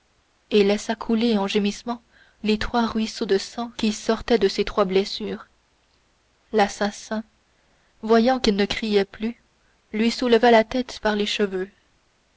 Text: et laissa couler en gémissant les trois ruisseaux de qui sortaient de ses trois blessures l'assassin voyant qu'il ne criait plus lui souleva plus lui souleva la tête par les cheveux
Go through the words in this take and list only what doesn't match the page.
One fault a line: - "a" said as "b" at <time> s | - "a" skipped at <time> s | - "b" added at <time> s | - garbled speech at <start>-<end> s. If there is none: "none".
- "sang" added at 3.4 s
- "plus lui souleva" skipped at 10.5 s